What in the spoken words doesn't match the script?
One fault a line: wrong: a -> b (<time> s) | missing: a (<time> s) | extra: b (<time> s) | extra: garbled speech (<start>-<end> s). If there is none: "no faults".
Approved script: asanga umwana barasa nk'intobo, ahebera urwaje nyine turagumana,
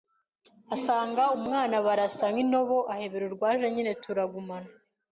no faults